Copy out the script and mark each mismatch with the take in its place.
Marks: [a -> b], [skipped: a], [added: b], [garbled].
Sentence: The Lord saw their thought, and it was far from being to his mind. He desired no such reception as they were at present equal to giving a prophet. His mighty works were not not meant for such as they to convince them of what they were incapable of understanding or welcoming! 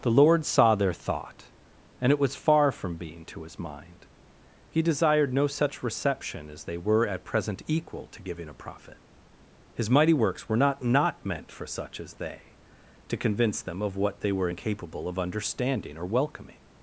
The Lord saw their thought, and it was far from being to his mind. He desired no such reception as they were at present equal to giving a prophet. His mighty works were not not meant for such as they to convince them of what they were incapable of understanding or welcoming!